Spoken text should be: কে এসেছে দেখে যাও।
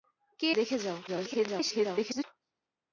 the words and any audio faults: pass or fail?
fail